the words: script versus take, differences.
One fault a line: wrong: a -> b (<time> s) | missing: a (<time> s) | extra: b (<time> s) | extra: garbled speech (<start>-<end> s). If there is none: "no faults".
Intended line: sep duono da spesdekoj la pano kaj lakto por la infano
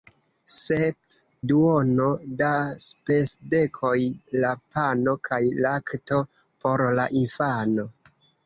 no faults